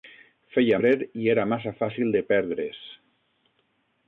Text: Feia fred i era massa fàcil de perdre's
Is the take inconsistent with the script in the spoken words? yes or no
no